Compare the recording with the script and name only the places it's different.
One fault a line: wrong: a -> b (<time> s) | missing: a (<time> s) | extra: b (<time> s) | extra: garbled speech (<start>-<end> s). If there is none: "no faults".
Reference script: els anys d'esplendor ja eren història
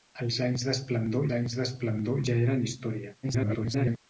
extra: anys d'esplendor (1.4 s)
extra: garbled speech (3.2-4.0 s)